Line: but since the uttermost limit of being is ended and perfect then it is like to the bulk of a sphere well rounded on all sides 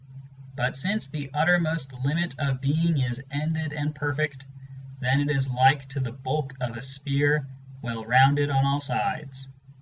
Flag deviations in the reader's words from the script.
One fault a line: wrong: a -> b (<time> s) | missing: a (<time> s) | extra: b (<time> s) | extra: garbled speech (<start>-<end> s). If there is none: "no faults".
no faults